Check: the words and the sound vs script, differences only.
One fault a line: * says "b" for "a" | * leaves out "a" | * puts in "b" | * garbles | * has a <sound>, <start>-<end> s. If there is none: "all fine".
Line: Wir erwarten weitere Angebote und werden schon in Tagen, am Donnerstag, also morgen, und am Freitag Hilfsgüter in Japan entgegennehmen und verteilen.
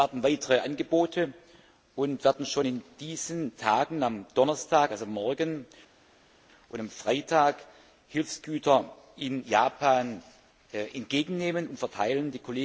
* puts in "diesen"